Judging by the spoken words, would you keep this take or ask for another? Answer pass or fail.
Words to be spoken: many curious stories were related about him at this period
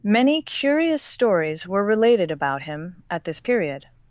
pass